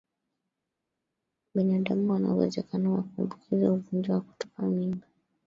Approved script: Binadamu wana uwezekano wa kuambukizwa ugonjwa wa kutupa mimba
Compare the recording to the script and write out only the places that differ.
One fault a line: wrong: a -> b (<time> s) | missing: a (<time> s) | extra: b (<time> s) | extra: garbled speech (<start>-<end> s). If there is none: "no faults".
no faults